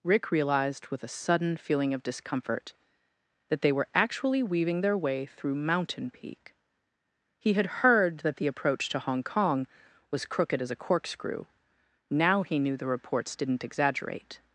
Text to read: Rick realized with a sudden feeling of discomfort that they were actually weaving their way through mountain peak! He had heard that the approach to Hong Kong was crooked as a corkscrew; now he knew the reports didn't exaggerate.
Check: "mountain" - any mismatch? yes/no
no